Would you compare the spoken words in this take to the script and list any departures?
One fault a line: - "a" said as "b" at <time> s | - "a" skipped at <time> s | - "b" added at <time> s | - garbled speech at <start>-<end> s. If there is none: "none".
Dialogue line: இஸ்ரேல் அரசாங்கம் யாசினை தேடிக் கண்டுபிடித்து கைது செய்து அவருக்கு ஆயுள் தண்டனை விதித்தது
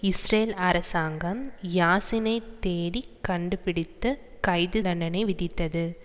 - "செய்து அவருக்கு ஆயுள்" skipped at 4.8 s